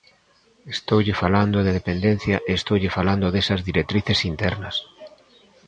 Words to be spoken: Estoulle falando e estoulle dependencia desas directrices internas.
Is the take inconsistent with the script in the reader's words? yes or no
yes